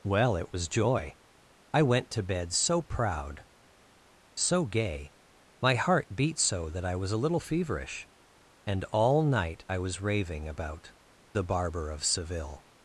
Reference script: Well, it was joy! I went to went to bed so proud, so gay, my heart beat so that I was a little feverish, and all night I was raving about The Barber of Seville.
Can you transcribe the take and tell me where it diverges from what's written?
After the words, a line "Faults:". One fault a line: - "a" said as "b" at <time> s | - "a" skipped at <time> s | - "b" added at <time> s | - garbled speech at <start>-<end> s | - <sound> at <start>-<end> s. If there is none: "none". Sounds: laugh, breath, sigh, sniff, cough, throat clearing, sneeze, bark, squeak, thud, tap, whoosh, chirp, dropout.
Well, it was joy! I went to bed so proud, so gay, my heart beat so that I was a little feverish, and all night I was raving about The Barber of Seville.
Faults:
- "went to" skipped at 2.2 s